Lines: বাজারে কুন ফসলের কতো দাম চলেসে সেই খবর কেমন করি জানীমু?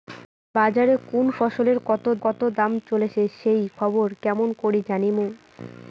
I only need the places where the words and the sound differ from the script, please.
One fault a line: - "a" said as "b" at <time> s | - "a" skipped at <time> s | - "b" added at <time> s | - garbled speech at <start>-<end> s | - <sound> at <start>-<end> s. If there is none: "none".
- "কতো" added at 2.2 s